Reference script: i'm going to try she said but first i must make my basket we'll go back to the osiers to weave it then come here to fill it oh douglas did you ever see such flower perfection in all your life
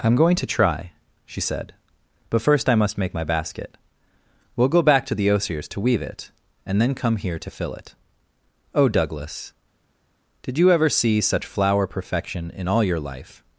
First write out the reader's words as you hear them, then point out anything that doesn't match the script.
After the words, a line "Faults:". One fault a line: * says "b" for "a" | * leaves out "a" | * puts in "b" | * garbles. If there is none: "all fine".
i'm going to try she said but first i must make my basket we'll go back to the osiers to weave it and then come here to fill it oh douglas did you ever see such flower perfection in all your life
Faults:
* puts in "and"